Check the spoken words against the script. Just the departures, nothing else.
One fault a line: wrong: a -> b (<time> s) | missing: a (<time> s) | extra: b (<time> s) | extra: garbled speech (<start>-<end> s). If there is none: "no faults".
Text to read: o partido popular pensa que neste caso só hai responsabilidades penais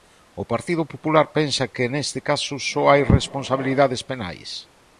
no faults